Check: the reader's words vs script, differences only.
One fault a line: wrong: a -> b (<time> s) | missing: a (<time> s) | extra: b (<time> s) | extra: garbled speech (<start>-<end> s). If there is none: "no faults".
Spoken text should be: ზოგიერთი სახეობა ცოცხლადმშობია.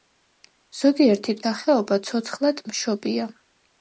no faults